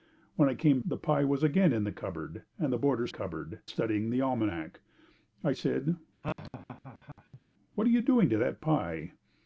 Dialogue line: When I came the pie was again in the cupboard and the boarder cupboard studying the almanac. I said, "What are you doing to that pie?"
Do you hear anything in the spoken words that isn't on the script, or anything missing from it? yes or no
no